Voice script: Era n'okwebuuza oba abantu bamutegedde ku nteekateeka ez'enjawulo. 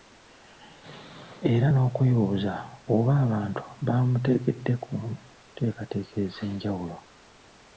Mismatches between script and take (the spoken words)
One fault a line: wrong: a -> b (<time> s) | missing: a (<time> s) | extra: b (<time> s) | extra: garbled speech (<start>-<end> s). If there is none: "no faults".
no faults